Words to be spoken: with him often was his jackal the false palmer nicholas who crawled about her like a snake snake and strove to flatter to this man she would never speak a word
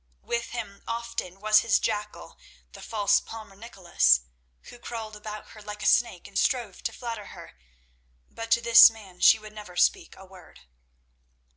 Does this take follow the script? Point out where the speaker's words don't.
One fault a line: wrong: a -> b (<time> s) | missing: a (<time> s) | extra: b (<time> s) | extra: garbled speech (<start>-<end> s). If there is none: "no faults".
missing: snake (6.3 s)
extra: her but (7.3 s)